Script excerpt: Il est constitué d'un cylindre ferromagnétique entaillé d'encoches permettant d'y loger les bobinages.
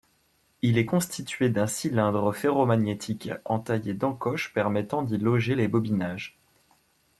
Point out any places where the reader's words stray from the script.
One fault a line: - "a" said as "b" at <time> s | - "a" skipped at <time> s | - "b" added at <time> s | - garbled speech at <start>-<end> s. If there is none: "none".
none